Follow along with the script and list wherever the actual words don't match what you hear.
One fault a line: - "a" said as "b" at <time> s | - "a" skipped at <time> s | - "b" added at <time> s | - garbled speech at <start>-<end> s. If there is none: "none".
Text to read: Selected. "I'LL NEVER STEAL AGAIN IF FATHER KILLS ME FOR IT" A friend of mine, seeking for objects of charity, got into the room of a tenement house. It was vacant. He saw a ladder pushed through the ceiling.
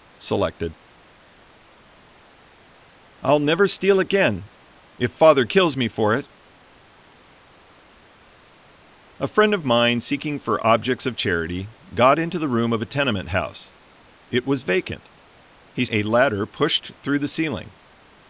- "saw" skipped at 15.8 s